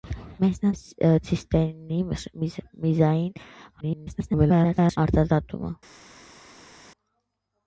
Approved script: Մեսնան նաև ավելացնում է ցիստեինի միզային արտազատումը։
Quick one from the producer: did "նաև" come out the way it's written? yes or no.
no